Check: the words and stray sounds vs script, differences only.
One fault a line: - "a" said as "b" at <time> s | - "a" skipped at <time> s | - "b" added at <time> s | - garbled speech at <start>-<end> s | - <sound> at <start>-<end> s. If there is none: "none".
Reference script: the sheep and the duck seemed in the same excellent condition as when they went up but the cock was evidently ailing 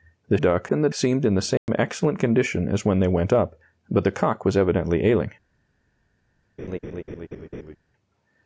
- "sheep" said as "duck" at 0.3 s
- "duck" skipped at 0.9 s
- dropout at 1.6-1.7 s
- laugh at 6.6-7.8 s